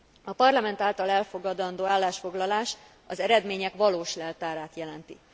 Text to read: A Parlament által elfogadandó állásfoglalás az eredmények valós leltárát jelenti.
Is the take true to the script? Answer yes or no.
yes